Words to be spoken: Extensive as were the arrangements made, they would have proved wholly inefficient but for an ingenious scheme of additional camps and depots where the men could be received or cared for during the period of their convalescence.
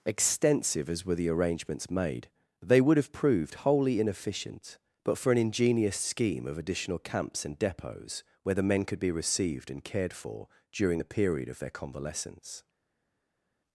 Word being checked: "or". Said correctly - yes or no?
no